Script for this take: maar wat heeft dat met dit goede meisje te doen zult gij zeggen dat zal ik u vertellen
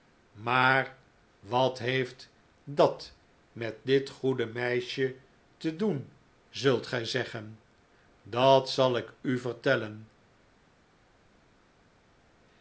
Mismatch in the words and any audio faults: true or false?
false